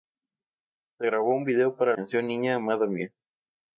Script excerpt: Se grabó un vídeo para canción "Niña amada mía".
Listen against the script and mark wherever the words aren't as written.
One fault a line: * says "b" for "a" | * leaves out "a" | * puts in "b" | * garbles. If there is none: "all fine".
all fine